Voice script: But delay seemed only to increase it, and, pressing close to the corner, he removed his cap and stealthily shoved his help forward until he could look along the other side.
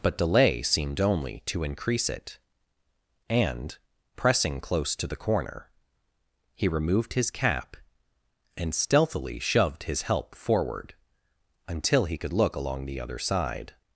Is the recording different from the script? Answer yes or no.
no